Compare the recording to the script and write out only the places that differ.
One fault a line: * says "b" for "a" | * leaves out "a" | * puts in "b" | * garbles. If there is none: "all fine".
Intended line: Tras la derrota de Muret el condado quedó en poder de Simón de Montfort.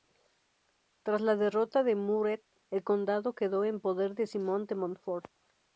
all fine